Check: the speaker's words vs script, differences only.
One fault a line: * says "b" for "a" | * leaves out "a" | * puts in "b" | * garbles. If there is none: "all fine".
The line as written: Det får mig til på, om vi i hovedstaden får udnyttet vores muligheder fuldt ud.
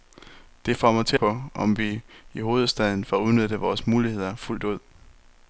all fine